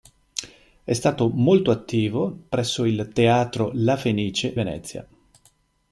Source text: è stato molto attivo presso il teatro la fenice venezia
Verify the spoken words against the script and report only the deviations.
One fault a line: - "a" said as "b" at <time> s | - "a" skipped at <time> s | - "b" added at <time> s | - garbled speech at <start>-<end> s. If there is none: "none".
none